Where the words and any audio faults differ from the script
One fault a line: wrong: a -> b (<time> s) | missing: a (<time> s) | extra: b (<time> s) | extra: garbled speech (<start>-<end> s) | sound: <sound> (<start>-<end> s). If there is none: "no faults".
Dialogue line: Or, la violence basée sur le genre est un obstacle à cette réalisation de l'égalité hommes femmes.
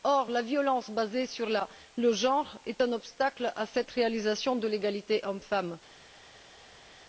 no faults